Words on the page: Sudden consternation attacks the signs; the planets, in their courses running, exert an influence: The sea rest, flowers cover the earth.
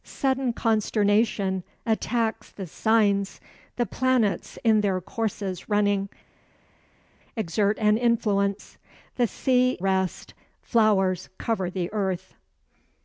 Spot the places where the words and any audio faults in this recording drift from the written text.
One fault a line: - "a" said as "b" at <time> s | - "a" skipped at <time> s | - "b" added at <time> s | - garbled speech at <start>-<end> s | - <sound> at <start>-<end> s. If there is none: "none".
none